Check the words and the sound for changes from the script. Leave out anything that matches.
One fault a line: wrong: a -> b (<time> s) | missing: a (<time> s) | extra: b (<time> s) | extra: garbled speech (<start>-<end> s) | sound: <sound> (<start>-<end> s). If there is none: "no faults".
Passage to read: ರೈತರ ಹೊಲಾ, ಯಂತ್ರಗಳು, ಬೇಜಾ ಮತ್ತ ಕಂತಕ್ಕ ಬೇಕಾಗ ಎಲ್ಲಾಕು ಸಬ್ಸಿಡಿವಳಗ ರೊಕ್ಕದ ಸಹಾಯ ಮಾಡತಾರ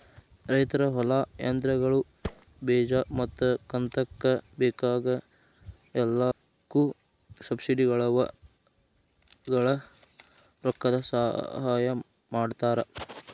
sound: thud (2.2-2.5 s)
sound: dropout (6.3-6.4 s)